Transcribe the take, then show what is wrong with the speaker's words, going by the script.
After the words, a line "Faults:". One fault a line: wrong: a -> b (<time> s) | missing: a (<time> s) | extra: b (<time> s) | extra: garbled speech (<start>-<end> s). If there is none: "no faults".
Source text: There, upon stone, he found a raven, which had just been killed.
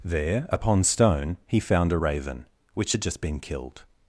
There, upon stone, he found a raven, which had just been killed.
Faults:
no faults